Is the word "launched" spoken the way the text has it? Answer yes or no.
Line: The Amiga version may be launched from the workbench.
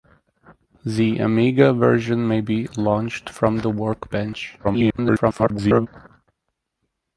yes